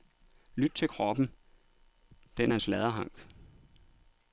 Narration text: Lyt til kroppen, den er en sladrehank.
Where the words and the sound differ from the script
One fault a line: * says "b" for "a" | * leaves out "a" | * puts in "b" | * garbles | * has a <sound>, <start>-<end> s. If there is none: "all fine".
all fine